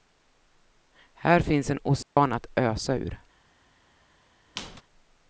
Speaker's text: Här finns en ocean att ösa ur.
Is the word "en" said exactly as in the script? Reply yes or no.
yes